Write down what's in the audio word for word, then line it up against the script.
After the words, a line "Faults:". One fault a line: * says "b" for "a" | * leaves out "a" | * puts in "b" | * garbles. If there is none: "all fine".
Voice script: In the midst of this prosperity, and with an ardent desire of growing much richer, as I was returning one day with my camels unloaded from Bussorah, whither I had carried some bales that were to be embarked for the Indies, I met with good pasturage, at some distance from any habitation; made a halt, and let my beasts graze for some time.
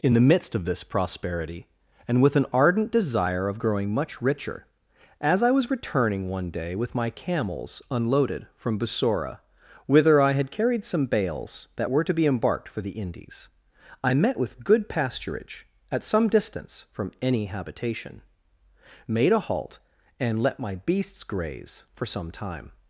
In the midst of this prosperity, and with an ardent desire of growing much richer, as I was returning one day with my camels unloaded from Bussorah, whither I had carried some bales that were to be embarked for the Indies, I met with good pasturage, at some distance from any habitation; made a halt, and let my beasts graze for some time.
Faults:
all fine